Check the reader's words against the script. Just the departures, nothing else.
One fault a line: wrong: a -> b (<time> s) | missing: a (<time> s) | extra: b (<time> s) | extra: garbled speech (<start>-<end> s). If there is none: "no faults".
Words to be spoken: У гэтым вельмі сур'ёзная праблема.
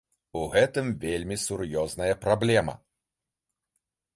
no faults